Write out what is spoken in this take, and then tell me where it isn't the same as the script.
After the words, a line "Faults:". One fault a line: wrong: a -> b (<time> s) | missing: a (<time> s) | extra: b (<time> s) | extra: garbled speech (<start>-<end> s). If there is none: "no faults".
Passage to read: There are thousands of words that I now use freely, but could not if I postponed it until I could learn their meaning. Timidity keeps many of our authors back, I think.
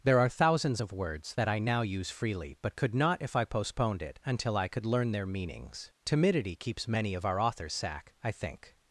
There are thousands of words that I now use freely, but could not if I postponed it until I could learn their meanings. Timidity keeps many of our authors sack, I think.
Faults:
wrong: meaning -> meanings (5.2 s)
wrong: back -> sack (7.7 s)